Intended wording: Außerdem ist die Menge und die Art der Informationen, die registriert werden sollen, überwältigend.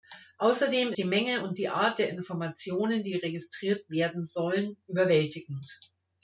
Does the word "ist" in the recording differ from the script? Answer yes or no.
yes